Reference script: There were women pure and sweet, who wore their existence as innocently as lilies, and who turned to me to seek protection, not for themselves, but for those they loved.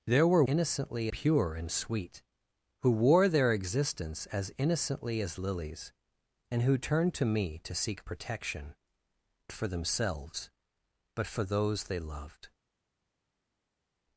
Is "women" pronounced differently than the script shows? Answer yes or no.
yes